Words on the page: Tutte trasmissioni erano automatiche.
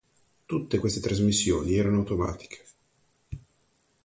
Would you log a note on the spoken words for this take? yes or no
yes